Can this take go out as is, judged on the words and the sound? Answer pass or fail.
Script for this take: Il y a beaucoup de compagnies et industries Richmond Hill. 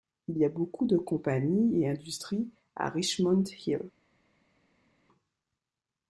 fail